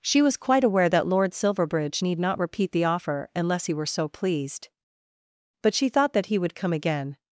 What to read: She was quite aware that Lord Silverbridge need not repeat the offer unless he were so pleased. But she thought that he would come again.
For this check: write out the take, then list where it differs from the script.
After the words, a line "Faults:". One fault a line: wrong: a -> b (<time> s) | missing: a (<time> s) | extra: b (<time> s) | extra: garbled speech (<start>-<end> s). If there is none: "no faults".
She was quite aware that Lord Silverbridge need not repeat the offer unless he were so pleased. But she thought that he would come again.
Faults:
no faults